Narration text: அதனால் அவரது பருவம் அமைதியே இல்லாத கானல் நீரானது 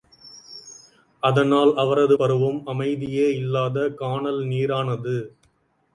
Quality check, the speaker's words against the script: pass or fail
pass